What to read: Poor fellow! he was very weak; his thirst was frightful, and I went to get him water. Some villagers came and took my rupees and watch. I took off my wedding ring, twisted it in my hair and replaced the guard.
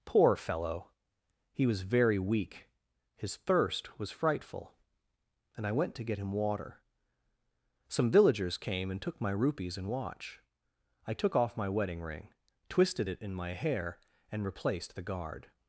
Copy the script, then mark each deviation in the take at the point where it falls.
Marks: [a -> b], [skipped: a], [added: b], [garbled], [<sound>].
Poor fellow! he was very weak; his thirst was frightful, and I went to get him water. Some villagers came and took my rupees and watch. I took off my wedding ring, twisted it in my hair and replaced the guard.